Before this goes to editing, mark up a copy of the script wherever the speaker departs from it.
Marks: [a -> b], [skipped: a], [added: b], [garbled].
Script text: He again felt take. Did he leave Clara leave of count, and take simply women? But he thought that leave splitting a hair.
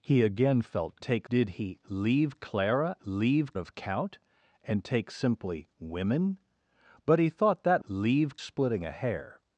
He again felt take. Did he leave Clara leave of count, and take simply women? But he thought that leave splitting a hair.